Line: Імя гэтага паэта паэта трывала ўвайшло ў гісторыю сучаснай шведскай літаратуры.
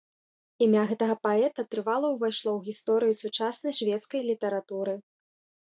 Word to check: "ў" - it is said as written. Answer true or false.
true